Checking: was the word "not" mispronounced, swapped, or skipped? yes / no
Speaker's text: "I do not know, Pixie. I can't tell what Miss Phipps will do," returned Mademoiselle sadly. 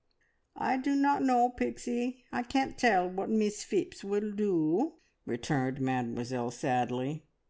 no